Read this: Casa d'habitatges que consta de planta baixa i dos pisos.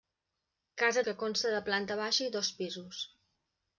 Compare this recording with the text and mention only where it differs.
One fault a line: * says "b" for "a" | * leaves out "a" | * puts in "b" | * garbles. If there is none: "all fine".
* leaves out "d'habitatges"